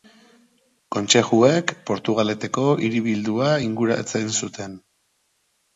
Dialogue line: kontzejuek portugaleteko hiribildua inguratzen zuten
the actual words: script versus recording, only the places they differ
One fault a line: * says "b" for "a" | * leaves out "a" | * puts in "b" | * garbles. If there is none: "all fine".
all fine